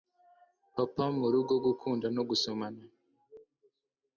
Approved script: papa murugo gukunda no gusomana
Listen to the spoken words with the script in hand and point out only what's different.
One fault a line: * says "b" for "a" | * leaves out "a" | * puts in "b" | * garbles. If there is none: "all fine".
all fine